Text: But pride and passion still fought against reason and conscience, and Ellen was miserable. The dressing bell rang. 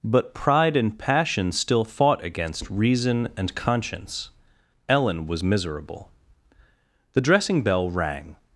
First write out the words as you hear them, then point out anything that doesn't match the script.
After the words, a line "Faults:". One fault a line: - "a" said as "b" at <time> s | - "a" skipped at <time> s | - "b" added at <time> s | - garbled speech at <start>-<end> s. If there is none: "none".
But pride and passion still fought against reason and conscience, Ellen was miserable. The dressing bell rang.
Faults:
- "and" skipped at 4.3 s